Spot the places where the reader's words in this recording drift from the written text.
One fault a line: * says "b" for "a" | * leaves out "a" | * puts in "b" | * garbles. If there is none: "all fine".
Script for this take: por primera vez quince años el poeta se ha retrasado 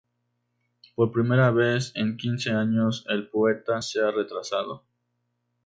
* puts in "en"